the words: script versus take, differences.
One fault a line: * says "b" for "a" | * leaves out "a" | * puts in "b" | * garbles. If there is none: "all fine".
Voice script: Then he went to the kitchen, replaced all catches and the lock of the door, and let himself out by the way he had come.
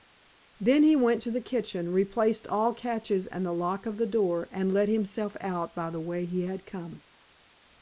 all fine